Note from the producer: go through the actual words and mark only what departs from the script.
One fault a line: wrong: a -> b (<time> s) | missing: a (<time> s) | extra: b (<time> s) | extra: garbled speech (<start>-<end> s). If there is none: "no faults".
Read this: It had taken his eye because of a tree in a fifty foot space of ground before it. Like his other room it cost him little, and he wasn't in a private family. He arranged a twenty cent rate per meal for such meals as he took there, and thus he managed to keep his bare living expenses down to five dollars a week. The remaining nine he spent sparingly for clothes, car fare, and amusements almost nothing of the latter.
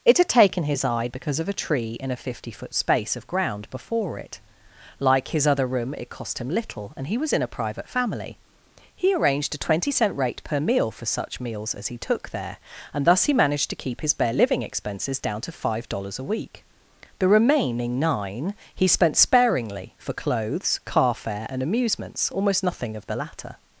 wrong: wasn't -> was (7.2 s)